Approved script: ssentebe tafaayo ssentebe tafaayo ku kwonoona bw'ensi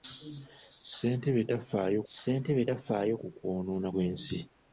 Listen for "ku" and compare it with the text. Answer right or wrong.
right